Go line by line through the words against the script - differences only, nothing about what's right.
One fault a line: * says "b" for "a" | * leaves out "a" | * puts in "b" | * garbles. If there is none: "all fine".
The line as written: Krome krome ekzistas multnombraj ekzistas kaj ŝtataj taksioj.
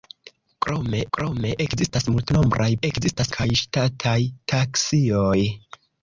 all fine